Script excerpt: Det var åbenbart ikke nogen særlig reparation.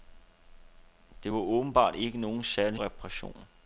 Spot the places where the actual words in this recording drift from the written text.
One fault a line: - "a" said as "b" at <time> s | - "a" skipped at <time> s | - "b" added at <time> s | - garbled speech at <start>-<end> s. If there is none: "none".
none